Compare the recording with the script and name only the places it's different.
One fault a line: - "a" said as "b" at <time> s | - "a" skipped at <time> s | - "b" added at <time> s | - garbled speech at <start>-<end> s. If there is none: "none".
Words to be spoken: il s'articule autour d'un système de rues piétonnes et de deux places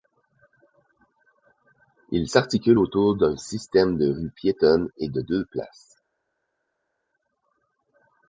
none